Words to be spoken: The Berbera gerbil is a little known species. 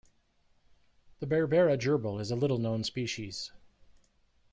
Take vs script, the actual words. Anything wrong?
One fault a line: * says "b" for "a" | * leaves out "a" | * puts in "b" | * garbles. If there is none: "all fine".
all fine